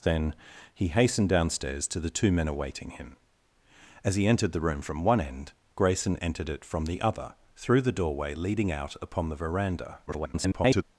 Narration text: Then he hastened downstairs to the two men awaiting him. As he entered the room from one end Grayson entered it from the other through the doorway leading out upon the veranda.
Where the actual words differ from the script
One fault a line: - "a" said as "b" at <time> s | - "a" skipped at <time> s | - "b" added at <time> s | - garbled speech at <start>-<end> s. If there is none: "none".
- garbled speech at 10.1-10.8 s